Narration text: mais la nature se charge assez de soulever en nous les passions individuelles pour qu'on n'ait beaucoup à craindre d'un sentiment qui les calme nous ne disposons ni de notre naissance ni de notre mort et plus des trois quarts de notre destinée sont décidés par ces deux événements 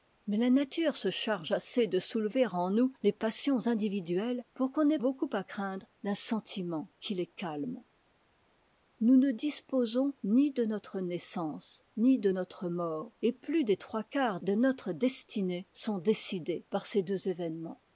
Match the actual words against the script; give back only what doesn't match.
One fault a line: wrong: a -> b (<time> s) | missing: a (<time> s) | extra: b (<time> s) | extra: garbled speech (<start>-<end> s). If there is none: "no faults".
no faults